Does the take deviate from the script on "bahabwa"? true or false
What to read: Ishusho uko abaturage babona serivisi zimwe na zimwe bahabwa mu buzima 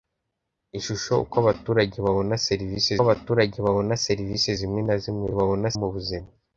true